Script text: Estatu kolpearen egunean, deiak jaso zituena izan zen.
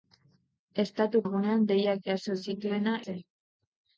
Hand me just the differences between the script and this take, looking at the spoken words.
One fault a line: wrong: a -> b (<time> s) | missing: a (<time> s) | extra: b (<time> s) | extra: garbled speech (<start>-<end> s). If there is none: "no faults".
missing: kolpearen (1.2 s)
missing: izan (3.0 s)